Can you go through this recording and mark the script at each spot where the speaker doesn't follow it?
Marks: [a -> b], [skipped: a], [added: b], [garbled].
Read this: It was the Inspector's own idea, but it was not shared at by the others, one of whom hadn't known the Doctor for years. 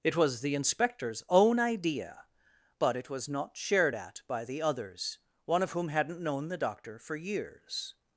It was the Inspector's own idea, but it was not shared at by the others, one of whom hadn't known the Doctor for years.